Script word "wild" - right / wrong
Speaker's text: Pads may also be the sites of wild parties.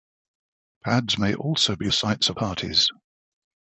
wrong